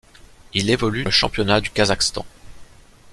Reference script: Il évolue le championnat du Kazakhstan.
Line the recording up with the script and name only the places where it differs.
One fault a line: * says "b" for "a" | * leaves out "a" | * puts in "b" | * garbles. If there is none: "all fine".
all fine